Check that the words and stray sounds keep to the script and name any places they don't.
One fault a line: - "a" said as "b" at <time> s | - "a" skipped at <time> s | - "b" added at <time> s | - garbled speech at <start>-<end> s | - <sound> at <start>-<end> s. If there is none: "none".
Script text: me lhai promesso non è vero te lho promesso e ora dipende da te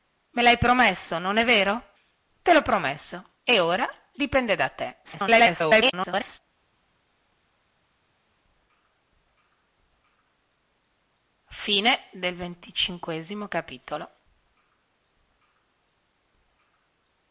- garbled speech at 5.0-6.4 s